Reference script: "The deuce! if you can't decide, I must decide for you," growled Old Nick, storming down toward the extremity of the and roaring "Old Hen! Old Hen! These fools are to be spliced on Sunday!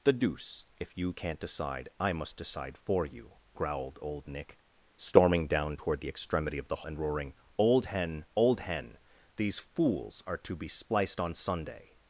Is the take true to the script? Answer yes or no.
yes